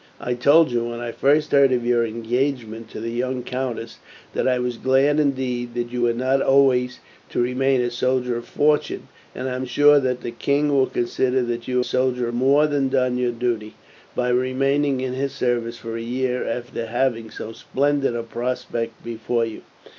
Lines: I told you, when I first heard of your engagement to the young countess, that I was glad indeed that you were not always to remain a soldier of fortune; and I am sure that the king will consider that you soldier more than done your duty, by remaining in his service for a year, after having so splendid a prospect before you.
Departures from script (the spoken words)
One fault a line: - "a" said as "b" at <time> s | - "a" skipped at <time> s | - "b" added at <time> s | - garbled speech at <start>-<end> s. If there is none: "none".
none